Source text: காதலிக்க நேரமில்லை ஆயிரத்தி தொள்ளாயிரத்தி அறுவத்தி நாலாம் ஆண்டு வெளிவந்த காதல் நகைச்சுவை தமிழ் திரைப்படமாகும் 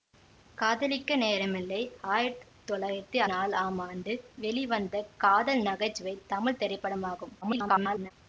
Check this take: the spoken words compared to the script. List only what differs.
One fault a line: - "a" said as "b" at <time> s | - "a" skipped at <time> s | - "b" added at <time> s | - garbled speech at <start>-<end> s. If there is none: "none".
- "அறுவத்தி" skipped at 3.2 s
- garbled speech at 7.4-8.1 s